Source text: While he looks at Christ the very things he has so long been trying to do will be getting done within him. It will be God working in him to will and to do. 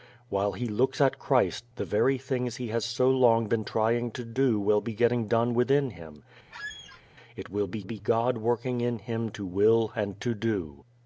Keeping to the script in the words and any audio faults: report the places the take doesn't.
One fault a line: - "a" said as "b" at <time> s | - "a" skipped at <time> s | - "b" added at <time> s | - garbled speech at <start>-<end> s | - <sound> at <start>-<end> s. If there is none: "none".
- squeak at 6.5-7.0 s
- "be" added at 7.8 s